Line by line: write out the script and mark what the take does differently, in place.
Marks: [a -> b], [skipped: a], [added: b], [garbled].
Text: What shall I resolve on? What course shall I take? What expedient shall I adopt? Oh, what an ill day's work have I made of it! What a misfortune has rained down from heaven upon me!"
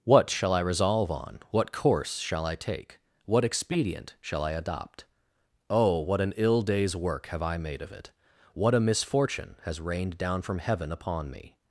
What shall I resolve on? What course shall I take? What expedient shall I adopt? Oh, what an ill day's work have I made of it! What a misfortune has rained down from heaven upon me!"